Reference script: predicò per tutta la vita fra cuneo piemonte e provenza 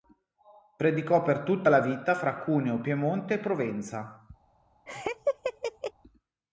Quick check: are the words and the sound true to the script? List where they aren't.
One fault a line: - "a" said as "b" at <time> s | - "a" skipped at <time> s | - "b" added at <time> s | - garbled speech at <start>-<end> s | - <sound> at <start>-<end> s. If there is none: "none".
- laugh at 4.9-5.9 s